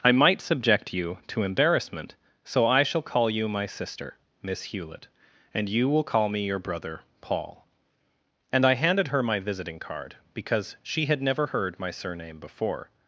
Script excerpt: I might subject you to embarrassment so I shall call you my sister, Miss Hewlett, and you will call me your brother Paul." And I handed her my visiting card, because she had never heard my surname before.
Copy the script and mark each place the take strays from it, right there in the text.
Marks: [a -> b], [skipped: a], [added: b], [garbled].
I might subject you to embarrassment so I shall call you my sister, Miss Hewlett, and you will call me your brother Paul." And I handed her my visiting card, because she had never heard my surname before.